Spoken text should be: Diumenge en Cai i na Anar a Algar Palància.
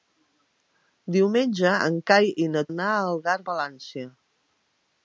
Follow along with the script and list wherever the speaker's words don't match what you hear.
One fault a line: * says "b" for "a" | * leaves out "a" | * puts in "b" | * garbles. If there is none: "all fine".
all fine